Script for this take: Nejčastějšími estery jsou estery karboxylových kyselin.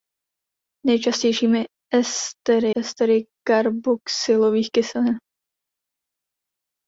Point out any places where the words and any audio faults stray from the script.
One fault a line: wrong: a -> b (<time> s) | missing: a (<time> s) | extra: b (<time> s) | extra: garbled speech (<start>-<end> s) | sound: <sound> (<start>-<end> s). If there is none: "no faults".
missing: jsou (2.8 s)